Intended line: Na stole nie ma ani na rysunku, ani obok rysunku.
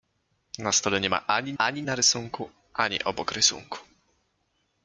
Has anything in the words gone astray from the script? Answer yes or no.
yes